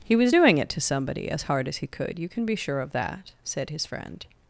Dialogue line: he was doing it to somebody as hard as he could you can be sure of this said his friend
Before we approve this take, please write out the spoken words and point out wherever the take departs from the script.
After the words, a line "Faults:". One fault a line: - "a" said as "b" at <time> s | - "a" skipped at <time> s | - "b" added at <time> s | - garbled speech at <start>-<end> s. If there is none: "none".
he was doing it to somebody as hard as he could you can be sure of that said his friend
Faults:
- "this" said as "that" at 2.9 s